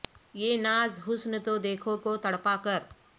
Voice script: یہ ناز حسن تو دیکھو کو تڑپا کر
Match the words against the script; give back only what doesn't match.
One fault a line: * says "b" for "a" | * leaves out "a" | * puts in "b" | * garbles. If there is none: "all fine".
all fine